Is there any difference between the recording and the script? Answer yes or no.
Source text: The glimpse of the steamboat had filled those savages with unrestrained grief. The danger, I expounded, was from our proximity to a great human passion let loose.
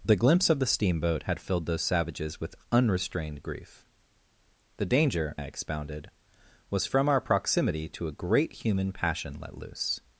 no